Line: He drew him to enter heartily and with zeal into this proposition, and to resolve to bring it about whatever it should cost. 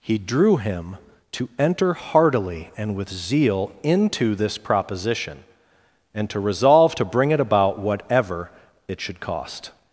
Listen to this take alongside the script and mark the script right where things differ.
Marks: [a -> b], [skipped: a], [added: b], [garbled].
He drew him to enter heartily and with zeal into this proposition, and to resolve to bring it about whatever it should cost.